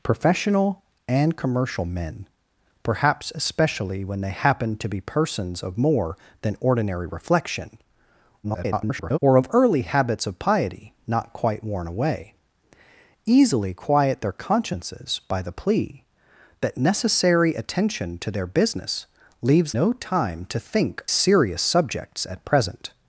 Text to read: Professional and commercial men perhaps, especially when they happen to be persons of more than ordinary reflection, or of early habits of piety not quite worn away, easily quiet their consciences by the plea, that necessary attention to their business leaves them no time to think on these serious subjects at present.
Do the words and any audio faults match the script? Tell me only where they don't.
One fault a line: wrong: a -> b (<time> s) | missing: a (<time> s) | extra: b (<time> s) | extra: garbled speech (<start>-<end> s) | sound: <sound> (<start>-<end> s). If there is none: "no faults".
extra: garbled speech (8.4-9.2 s)
missing: them (19.7 s)
missing: on these (21.0 s)